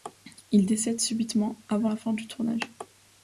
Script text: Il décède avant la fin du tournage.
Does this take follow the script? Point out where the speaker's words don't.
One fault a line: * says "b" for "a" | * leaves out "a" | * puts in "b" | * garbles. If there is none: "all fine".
* puts in "subitement"